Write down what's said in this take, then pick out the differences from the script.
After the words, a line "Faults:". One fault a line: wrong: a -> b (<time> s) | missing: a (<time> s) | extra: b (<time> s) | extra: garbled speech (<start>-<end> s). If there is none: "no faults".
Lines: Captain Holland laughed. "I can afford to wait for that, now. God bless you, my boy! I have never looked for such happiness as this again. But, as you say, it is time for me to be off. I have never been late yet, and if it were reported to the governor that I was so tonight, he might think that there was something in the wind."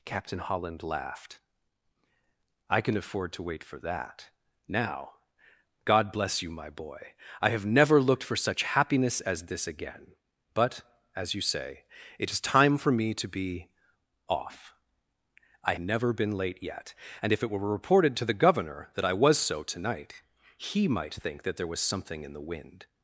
Captain Holland laughed. "I can afford to wait for that, now. God bless you, my boy! I have never looked for such happiness as this again. But, as you say, it is time for me to be off. I never been late yet, and if it were reported to the governor that I was so tonight, he might think that there was something in the wind."
Faults:
missing: have (15.8 s)